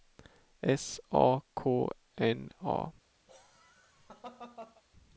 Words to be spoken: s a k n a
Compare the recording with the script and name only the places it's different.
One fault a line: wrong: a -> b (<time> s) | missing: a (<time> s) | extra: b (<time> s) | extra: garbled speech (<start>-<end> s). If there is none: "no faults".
no faults